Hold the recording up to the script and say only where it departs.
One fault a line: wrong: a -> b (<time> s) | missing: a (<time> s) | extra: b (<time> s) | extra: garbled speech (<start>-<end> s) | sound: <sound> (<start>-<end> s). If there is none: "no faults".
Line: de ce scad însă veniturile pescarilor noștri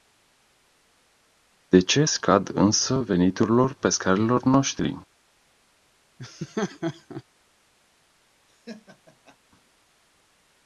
sound: laugh (6.2-7.2 s)
sound: laugh (8.5-9.4 s)